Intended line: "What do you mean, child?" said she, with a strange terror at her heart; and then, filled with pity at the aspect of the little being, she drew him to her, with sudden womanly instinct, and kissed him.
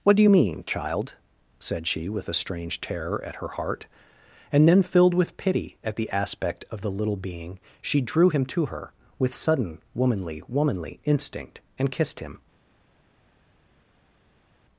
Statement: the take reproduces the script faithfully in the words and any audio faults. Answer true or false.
false